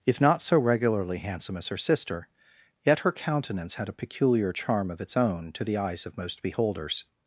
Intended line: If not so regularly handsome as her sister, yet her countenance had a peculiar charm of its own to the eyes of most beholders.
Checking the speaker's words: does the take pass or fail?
pass